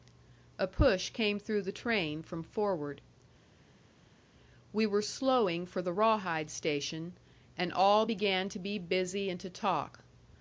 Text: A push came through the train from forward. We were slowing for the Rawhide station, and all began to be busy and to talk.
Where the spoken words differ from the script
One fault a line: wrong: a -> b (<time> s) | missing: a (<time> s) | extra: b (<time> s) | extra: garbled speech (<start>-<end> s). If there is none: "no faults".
no faults